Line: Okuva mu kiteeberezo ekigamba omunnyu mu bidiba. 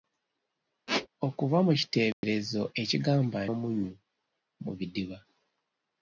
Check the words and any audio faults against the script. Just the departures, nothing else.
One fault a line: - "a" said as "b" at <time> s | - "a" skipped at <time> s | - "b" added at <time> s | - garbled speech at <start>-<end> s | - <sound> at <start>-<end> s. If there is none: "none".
- squeak at 0.9-1.1 s
- dropout at 2.1-2.2 s